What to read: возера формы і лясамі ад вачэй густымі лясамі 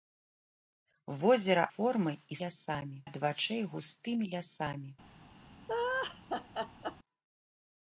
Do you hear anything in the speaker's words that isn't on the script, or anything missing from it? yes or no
no